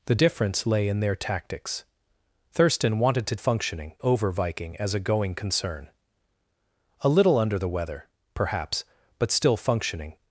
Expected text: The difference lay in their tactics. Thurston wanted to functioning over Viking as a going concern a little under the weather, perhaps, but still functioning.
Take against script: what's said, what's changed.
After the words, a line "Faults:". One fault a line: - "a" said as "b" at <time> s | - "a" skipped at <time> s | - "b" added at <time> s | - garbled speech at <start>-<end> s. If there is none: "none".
The difference lay in their tactics. Thurston wanted to functioning over Viking as a going concern a little under the weather, perhaps, but still functioning.
Faults:
none